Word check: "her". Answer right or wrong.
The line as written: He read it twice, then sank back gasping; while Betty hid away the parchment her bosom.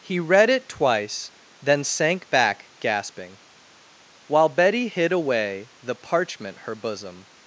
right